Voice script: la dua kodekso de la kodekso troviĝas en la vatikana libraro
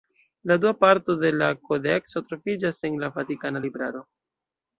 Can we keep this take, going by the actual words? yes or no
no